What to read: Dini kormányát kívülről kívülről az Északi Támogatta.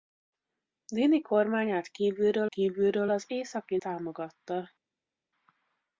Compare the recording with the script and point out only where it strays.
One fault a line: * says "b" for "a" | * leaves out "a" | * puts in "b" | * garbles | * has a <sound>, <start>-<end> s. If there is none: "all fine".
all fine